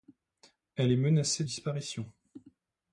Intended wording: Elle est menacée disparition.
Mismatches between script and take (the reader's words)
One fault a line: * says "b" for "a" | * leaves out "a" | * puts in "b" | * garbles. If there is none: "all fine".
all fine